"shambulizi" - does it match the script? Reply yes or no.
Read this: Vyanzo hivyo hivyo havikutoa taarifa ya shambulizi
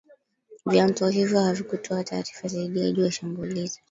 yes